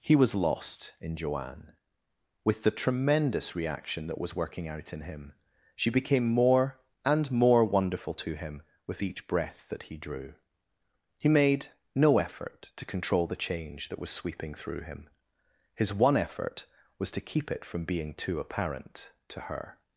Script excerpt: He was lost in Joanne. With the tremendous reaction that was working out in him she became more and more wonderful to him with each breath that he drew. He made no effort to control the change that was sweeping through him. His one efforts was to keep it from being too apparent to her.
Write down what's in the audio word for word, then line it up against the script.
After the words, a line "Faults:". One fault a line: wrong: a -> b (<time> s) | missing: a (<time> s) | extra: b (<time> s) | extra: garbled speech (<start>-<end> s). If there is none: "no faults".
He was lost in Joanne. With the tremendous reaction that was working out in him she became more and more wonderful to him with each breath that he drew. He made no effort to control the change that was sweeping through him. His one effort was to keep it from being too apparent to her.
Faults:
wrong: efforts -> effort (16.2 s)